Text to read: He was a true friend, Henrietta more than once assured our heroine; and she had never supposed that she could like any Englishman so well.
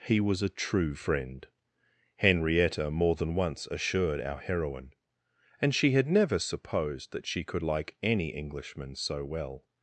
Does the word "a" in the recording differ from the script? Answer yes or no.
no